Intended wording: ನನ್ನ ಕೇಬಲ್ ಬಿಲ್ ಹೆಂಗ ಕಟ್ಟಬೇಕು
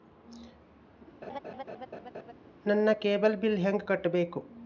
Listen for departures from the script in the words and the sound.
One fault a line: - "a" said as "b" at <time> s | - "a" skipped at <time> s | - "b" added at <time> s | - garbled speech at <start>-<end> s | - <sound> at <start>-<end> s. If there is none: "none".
- laugh at 1.2-2.3 s